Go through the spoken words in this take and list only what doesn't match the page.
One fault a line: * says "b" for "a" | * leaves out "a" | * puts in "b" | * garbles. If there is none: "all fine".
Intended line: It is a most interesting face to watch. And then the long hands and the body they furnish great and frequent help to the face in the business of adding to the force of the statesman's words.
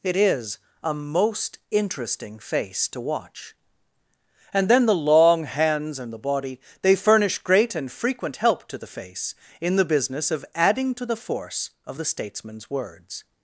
all fine